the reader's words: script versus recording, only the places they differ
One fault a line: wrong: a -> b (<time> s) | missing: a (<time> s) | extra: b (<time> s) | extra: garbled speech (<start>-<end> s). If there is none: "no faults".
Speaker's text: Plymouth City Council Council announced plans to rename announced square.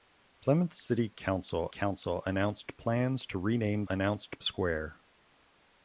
no faults